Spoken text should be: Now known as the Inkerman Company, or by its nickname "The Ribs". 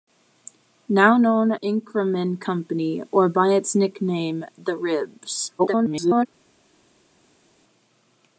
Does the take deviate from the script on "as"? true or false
true